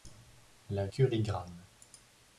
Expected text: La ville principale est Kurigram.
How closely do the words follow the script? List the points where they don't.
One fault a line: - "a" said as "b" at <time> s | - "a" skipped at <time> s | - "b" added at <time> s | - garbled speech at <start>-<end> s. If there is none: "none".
- "ville principale est" skipped at 0.9 s